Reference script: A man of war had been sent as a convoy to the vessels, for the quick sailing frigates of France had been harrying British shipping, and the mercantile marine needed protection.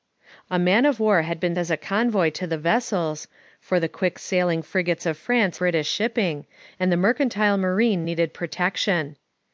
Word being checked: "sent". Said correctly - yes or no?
no